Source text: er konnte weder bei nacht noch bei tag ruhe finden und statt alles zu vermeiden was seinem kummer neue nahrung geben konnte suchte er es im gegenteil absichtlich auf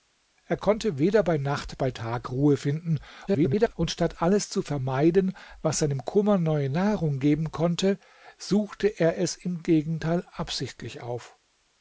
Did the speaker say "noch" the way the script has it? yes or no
no